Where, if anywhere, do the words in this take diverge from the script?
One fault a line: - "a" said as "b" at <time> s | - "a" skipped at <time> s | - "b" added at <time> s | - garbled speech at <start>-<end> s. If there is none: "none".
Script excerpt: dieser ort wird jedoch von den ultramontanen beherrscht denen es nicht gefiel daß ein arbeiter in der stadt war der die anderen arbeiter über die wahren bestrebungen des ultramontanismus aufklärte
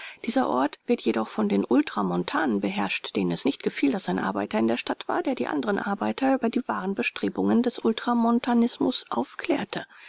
none